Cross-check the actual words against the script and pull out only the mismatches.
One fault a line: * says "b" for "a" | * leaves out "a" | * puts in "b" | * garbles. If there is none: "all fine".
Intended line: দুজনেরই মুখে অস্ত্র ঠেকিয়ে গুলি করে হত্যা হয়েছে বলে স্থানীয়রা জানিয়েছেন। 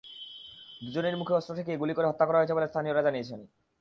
* puts in "করা"